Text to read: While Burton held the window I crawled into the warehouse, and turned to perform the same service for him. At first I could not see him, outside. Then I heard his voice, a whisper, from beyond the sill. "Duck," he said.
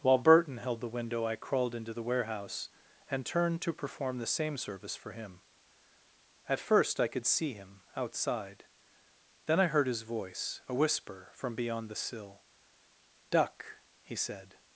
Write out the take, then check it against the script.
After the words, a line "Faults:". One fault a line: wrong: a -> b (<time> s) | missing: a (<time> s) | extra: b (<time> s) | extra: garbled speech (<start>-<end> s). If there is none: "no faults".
While Burton held the window I crawled into the warehouse, and turned to perform the same service for him. At first I could see him, outside. Then I heard his voice, a whisper, from beyond the sill. "Duck," he said.
Faults:
missing: not (7.2 s)